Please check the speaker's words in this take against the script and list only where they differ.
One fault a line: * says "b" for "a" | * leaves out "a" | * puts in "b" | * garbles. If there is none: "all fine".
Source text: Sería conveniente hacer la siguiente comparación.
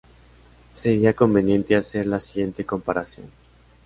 all fine